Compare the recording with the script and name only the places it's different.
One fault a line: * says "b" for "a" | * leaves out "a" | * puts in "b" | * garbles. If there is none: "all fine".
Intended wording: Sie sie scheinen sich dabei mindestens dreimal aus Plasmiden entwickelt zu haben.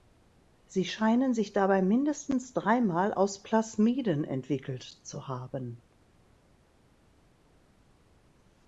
* leaves out "sie"